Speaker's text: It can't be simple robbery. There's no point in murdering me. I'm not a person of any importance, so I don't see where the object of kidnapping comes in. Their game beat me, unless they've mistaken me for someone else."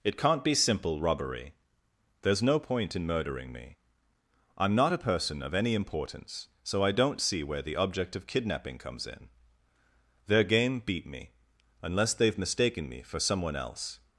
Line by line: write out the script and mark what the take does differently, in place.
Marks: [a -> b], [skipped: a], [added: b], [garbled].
It can't be simple robbery. There's no point in murdering me. I'm not a person of any importance, so I don't see where the object of kidnapping comes in. Their game beat me, unless they've mistaken me for someone else."